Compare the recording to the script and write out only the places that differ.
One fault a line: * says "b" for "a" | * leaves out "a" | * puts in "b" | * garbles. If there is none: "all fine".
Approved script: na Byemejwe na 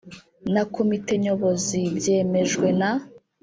* puts in "Komite Nyobozi"